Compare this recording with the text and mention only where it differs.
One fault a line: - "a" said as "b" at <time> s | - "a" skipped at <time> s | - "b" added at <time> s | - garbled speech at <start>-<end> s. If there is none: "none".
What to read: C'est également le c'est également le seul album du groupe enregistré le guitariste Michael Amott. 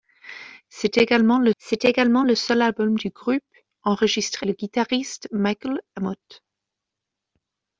none